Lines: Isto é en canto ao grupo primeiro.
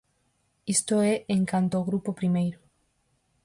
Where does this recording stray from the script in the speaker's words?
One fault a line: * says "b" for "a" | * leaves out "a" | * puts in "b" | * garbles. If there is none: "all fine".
all fine